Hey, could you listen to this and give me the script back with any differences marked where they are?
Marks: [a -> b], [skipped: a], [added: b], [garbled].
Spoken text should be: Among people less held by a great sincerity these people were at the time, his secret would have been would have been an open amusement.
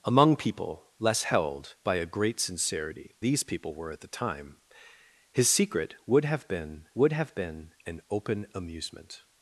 Among people less held by a great sincerity these people were at the time, his secret would have been would have been an open amusement.